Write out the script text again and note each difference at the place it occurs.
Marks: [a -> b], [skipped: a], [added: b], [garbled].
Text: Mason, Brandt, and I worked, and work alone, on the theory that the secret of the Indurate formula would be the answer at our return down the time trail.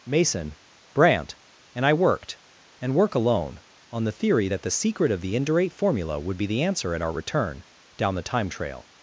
Mason, Brandt, and I worked, and work alone, on the theory that the secret of the Indurate formula would be the answer at our return down the time trail.